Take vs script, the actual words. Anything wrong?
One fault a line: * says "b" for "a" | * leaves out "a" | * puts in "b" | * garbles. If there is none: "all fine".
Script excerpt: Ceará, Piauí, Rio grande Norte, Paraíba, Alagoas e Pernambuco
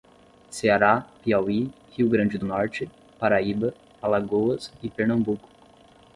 all fine